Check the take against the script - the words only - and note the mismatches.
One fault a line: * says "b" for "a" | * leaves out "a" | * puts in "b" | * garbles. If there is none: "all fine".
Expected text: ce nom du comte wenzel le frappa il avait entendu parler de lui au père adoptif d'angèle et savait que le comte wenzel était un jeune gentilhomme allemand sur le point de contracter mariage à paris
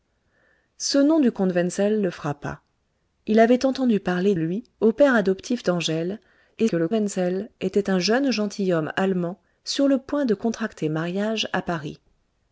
* leaves out "de"
* leaves out "savait"
* leaves out "comte"